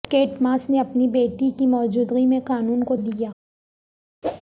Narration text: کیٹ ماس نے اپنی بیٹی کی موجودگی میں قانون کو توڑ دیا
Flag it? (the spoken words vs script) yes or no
yes